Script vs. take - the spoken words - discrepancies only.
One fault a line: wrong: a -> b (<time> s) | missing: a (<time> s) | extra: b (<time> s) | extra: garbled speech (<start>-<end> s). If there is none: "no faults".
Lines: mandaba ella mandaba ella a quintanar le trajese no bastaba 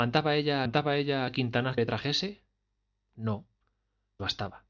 no faults